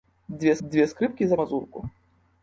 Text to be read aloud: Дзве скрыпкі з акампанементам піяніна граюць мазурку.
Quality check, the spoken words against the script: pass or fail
fail